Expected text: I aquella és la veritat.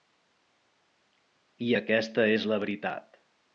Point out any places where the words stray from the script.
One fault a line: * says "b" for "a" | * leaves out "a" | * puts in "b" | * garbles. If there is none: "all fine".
* says "aquesta" for "aquella"